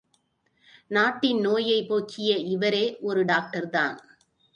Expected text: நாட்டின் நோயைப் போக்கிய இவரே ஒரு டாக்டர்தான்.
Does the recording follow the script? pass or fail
pass